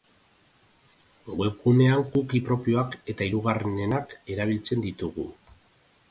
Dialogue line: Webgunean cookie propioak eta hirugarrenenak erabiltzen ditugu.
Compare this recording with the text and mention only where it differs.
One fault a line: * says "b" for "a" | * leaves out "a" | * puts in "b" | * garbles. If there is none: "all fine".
all fine